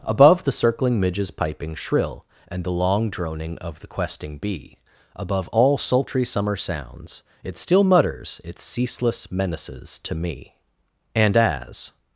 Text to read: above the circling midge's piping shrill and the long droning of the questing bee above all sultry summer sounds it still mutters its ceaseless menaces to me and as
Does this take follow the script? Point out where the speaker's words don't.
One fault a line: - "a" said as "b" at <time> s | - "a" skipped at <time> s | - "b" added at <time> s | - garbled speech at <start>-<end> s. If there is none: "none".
none